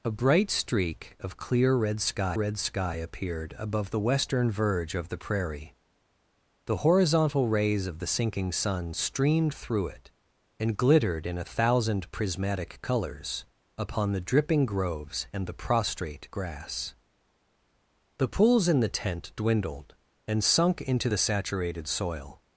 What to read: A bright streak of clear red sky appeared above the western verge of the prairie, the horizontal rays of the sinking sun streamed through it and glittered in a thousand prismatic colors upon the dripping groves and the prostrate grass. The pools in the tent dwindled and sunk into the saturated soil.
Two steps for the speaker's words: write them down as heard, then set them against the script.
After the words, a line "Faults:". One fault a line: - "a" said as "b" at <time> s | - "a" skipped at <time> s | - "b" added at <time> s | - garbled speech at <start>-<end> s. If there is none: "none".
A bright streak of clear red sky red sky appeared above the western verge of the prairie, the horizontal rays of the sinking sun streamed through it and glittered in a thousand prismatic colors upon the dripping groves and the prostrate grass. The pools in the tent dwindled and sunk into the saturated soil.
Faults:
- "red sky" added at 2.3 s